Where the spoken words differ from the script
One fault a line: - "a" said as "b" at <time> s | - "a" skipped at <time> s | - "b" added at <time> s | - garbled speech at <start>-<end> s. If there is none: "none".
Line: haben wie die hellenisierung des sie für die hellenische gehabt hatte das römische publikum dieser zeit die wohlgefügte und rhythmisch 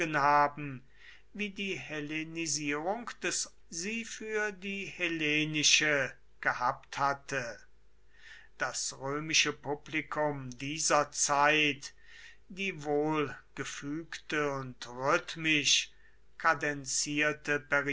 none